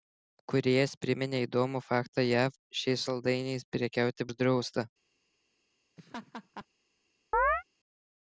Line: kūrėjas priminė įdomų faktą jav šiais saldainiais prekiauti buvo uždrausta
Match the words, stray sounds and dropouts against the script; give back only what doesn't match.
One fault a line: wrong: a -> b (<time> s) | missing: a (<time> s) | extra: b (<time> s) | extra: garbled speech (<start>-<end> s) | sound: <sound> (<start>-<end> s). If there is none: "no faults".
missing: buvo (4.3 s)
sound: laugh (6.0-6.7 s)
sound: chirp (7.3-7.6 s)